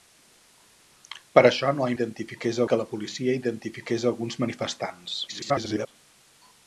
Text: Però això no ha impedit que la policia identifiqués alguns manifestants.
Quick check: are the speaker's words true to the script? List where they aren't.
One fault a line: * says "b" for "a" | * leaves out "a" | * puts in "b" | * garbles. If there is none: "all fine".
* says "identifiqués" for "impedit"
* garbles